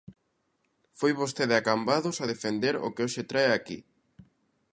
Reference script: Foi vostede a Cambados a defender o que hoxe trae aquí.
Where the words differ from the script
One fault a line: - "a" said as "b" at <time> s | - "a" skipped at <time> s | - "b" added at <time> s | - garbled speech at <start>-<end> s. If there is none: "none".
none